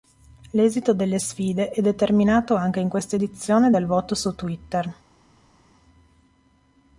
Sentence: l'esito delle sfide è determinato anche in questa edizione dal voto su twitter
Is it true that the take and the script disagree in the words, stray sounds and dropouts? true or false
false